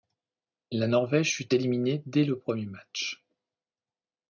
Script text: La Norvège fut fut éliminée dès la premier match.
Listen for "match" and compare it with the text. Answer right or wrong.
right